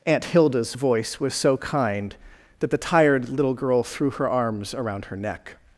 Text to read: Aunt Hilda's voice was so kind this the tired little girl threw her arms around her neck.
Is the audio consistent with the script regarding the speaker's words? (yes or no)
no